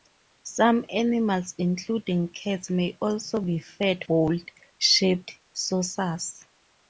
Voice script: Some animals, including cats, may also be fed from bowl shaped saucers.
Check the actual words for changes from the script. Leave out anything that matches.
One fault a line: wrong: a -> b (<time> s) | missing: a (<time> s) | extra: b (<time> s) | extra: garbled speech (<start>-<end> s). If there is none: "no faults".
missing: from (4.0 s)